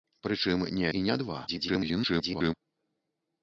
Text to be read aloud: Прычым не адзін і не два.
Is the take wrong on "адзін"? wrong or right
wrong